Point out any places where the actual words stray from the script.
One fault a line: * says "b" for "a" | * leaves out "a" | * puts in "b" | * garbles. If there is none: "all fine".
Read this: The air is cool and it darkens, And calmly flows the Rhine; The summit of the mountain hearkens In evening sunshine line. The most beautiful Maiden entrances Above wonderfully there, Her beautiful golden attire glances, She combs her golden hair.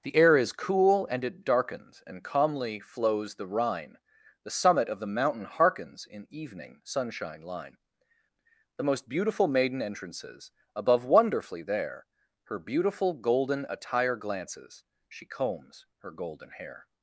all fine